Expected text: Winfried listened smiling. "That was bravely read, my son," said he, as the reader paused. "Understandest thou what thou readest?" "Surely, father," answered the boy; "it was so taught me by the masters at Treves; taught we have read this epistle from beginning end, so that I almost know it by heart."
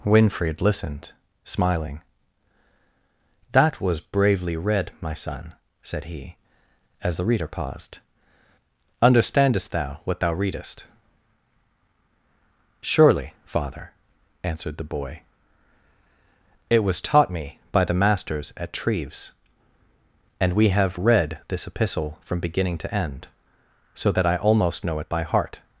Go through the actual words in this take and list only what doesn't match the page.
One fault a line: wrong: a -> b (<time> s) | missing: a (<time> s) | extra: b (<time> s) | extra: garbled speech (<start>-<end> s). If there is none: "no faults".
missing: so (17.0 s)
wrong: taught -> and (20.4 s)
extra: to (22.8 s)